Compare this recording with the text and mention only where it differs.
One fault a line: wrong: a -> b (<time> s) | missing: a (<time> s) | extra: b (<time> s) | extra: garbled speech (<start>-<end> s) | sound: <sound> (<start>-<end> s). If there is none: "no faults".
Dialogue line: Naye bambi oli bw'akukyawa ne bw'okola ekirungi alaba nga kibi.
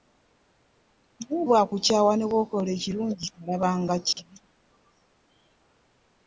missing: bambi oli (1.4 s)
sound: dropout (4.1-4.2 s)